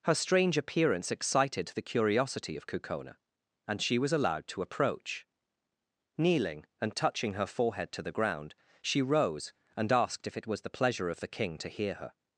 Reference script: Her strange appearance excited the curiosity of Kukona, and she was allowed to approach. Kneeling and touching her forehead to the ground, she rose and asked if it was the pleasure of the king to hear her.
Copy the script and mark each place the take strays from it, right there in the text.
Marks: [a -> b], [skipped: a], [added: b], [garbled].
Her strange appearance excited the curiosity of Kukona, and she was allowed to approach. Kneeling and touching her forehead to the ground, she rose and asked if it was the pleasure of the king to hear her.